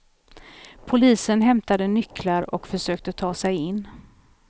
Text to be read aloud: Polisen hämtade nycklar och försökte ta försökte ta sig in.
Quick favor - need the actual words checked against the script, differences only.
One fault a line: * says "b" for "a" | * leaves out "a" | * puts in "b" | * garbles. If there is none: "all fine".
* leaves out "försökte ta"